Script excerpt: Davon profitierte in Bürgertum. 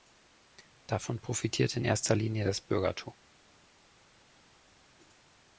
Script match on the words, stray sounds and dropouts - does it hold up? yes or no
no